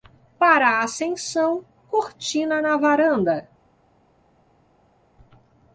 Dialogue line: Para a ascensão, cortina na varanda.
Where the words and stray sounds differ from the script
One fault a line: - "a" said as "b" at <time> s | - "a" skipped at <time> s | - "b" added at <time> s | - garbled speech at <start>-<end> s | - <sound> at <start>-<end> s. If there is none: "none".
none